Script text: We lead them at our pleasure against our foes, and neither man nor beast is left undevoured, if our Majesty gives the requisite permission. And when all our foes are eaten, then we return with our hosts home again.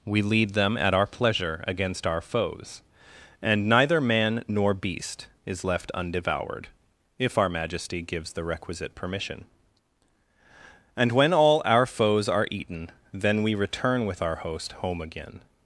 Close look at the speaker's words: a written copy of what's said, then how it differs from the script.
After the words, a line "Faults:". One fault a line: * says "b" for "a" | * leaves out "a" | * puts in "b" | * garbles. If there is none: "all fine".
We lead them at our pleasure against our foes, and neither man nor beast is left undevoured, if our Majesty gives the requisite permission. And when all our foes are eaten, then we return with our host home again.
Faults:
* says "host" for "hosts"